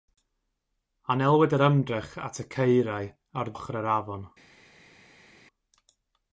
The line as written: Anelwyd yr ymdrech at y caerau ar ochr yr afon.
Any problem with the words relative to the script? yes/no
no